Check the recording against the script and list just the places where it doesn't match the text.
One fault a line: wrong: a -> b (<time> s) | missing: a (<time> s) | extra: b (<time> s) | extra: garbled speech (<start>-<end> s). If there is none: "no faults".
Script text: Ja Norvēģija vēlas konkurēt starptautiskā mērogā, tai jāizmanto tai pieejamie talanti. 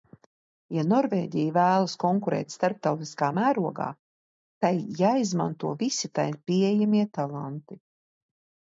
extra: visi (5.8 s)